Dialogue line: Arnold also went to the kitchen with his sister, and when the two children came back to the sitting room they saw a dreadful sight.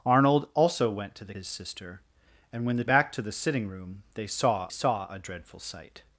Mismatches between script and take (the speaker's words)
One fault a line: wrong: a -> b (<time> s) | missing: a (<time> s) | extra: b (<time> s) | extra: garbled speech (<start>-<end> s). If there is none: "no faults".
missing: kitchen with (1.3 s)
missing: two children came (2.8 s)
extra: saw (4.7 s)